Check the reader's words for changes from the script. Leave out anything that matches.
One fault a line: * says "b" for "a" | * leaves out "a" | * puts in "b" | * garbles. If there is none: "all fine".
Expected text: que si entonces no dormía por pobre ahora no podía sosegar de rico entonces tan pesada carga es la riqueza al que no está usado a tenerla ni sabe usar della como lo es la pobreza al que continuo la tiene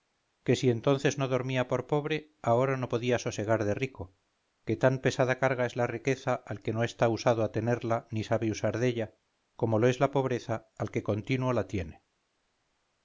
* says "que" for "entonces"